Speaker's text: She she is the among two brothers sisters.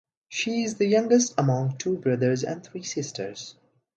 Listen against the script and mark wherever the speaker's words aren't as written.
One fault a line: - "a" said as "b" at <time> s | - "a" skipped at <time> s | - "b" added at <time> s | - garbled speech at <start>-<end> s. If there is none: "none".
- "she" skipped at 0.6 s
- "youngest" added at 0.9 s
- "and three" added at 2.4 s